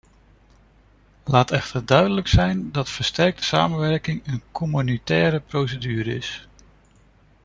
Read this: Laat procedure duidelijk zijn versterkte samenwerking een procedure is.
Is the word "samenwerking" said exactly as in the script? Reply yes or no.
yes